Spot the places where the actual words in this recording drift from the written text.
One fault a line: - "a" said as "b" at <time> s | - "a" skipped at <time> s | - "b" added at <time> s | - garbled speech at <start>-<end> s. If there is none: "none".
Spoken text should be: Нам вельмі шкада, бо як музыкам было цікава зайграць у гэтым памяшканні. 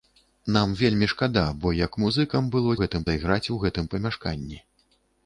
- "цікава" said as "гэтым" at 2.8 s